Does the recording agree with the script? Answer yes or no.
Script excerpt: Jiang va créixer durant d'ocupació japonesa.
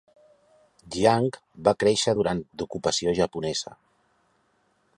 yes